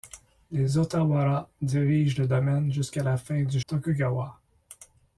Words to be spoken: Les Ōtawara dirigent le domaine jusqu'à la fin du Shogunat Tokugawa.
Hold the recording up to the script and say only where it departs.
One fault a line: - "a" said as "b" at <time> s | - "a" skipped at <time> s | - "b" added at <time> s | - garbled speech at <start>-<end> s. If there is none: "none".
- "Shogunat" skipped at 3.6 s